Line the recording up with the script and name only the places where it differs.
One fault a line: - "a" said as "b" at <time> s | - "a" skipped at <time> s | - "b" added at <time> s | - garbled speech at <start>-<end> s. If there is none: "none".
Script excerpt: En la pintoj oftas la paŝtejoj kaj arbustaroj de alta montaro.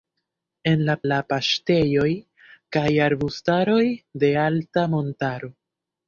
- "pintoj oftas" skipped at 0.9 s